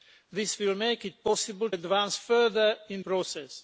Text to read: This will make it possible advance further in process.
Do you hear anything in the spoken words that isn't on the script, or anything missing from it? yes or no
no